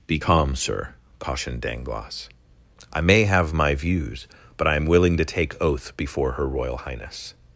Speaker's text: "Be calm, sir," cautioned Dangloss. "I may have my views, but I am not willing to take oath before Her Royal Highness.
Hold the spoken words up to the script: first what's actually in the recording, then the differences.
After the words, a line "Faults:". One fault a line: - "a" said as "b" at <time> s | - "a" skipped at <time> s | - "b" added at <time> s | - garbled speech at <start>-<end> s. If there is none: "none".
"Be calm, sir," cautioned Dangloss. "I may have my views, but I am willing to take oath before Her Royal Highness.
Faults:
- "not" skipped at 4.8 s